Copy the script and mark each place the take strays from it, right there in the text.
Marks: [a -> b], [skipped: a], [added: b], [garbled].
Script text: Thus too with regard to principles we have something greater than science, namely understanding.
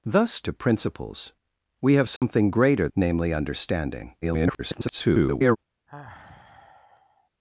Thus [skipped: too with regard] to principles we have something greater [skipped: than science,] namely understanding. [garbled]